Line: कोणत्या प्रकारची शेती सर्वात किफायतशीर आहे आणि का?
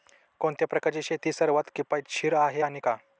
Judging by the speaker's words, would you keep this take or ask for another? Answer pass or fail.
pass